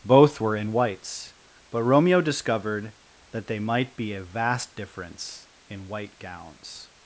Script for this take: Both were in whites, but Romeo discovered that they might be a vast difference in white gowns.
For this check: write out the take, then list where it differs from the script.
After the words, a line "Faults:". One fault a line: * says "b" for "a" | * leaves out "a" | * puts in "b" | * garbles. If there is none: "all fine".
Both were in whites, but Romeo discovered that they might be a vast difference in white gowns.
Faults:
all fine